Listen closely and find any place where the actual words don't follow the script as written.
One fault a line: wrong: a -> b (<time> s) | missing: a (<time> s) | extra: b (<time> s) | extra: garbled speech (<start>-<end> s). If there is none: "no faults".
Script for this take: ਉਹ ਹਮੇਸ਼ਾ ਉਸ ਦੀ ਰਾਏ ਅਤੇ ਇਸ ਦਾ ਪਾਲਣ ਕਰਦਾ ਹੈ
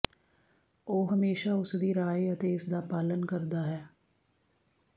no faults